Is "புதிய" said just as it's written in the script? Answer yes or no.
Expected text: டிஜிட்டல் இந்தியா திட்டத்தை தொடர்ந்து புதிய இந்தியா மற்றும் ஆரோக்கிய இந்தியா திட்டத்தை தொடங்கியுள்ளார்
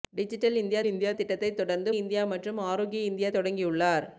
no